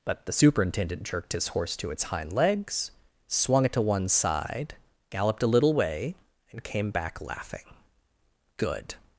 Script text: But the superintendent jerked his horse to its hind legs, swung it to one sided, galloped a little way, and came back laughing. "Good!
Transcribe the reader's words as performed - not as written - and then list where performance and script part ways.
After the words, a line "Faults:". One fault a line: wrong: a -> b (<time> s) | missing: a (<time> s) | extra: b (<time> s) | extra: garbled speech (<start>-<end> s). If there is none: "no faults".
But the superintendent jerked his horse to its hind legs, swung it to one side, galloped a little way, and came back laughing. "Good!
Faults:
wrong: sided -> side (4.1 s)